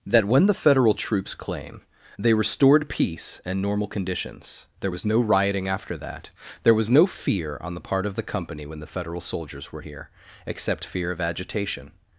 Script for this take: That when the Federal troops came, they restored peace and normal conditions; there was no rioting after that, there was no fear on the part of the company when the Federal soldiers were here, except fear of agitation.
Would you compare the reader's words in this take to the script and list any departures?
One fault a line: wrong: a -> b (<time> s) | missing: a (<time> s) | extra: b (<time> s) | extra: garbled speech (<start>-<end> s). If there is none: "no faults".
wrong: came -> claim (1.4 s)